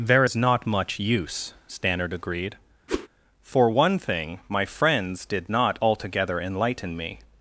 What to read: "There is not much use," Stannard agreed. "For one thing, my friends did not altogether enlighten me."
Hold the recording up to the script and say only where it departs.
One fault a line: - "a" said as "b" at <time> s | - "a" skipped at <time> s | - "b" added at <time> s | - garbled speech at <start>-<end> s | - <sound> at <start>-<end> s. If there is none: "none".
- whoosh at 2.9-3.1 s